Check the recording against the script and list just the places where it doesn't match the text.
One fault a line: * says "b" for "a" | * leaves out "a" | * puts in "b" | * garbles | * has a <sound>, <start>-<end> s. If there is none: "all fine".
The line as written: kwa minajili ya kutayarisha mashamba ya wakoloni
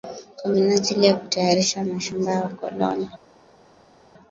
all fine